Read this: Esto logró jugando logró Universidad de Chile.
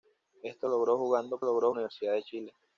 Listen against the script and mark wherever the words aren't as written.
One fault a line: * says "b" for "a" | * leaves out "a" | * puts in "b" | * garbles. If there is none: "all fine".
all fine